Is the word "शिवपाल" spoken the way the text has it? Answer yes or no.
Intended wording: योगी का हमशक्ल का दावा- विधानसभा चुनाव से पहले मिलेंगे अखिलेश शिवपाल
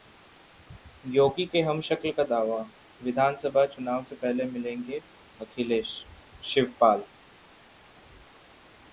yes